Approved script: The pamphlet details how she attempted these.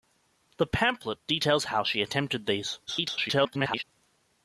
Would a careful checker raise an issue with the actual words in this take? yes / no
yes